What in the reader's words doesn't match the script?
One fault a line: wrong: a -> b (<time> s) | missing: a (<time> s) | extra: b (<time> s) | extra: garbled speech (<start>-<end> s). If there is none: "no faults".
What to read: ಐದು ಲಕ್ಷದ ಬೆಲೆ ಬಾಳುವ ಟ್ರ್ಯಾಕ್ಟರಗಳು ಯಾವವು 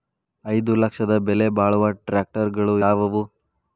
no faults